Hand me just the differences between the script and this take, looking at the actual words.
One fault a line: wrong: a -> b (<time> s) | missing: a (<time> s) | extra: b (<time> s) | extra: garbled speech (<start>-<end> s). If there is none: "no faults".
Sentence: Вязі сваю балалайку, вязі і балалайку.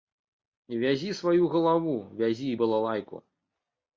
wrong: балалайку -> галаву (1.5 s)